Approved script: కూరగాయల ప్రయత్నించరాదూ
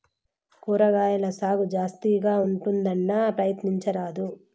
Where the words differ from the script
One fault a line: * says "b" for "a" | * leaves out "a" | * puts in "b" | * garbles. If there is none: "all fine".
* puts in "సాగు జాస్తిగా ఉంటుందన్నా"